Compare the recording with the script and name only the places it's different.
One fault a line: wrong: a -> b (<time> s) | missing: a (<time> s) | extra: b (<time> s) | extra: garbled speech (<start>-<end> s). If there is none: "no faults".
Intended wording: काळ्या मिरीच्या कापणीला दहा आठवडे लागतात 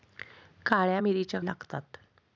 missing: कापणीला दहा आठवडे (1.4 s)